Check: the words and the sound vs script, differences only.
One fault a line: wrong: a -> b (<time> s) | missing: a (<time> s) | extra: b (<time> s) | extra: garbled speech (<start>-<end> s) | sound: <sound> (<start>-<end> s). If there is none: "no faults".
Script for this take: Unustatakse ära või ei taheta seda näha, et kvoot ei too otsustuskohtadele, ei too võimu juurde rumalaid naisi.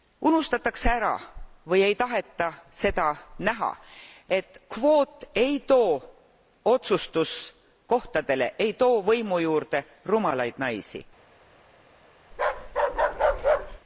sound: bark (12.3-13.8 s)